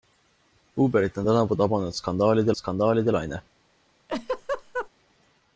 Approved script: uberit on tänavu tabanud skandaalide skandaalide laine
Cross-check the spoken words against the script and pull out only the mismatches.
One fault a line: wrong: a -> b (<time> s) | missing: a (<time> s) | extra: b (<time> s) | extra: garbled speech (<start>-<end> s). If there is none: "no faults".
no faults